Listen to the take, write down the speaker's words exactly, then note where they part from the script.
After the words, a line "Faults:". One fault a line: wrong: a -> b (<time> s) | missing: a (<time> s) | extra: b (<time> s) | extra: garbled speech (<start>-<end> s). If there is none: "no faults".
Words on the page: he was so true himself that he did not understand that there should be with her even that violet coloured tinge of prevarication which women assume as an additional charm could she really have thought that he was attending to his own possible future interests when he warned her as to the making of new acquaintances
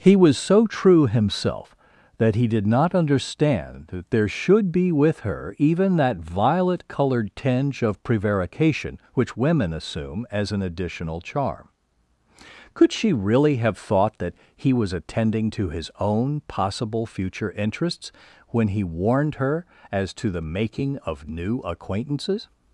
he was so true himself that he did not understand that there should be with her even that violet coloured tinge of prevarication which women assume as an additional charm could she really have thought that he was attending to his own possible future interests when he warned her as to the making of new acquaintances
Faults:
no faults